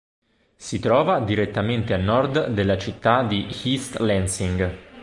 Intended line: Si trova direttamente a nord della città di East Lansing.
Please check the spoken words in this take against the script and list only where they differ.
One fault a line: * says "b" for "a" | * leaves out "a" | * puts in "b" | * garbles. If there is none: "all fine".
all fine